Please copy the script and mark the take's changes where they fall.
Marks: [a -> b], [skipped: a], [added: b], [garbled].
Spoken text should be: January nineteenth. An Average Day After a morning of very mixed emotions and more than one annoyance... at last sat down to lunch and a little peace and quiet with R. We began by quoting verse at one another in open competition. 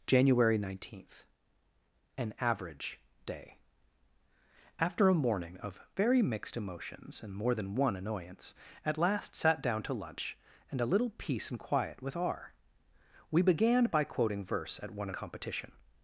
January nineteenth. An Average Day After a morning of very mixed emotions and more than one annoyance... at last sat down to lunch and a little peace and quiet with R. We began by quoting verse at one [skipped: another in open] competition.